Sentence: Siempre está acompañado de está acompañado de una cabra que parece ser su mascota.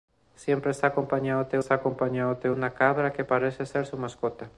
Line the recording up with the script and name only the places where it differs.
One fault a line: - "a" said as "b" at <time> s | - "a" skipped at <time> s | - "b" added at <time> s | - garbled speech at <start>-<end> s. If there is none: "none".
none